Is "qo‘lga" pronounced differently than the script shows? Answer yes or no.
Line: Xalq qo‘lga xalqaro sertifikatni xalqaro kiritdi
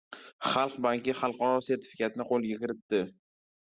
yes